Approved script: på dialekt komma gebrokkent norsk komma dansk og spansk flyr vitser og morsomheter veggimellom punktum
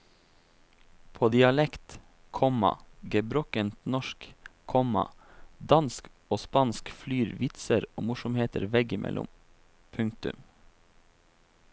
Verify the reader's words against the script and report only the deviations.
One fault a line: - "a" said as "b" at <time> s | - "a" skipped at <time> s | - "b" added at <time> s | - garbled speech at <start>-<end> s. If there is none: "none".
none